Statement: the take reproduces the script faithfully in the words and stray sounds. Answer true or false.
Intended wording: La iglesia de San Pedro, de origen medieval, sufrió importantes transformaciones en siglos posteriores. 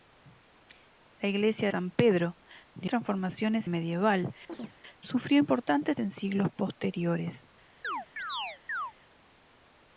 false